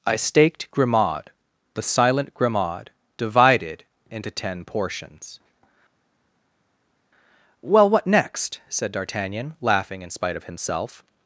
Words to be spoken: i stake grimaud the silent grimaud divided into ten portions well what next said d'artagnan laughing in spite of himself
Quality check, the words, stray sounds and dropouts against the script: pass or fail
fail